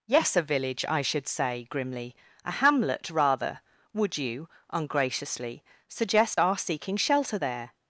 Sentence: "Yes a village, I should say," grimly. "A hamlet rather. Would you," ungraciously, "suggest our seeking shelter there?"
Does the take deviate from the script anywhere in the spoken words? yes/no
no